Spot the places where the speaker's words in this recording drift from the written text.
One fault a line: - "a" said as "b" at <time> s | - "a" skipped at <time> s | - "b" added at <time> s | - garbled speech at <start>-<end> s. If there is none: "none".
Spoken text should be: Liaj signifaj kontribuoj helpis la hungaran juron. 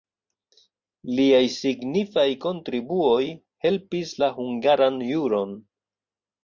none